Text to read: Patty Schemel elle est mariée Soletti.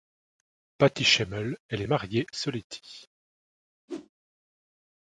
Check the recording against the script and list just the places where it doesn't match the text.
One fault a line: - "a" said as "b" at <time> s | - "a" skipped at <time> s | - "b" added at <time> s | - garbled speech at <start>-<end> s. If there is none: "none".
none